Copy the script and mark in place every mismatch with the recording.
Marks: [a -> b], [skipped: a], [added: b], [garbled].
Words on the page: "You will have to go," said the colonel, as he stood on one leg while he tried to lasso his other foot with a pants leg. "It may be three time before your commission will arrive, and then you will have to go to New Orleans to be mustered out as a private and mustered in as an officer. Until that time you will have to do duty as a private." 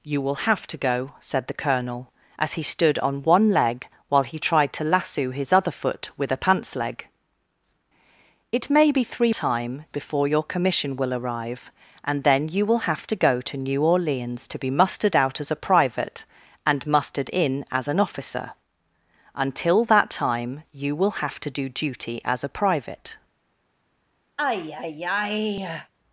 "You will have to go," said the colonel, as he stood on one leg while he tried to lasso his other foot with a pants leg. "It may be three time before your commission will arrive, and then you will have to go to New Orleans to be mustered out as a private and mustered in as an officer. Until that time you will have to do duty as a private."